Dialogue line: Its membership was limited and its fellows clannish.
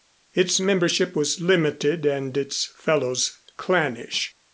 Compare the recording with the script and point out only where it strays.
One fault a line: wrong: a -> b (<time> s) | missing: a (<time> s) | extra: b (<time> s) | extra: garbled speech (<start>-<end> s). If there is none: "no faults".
no faults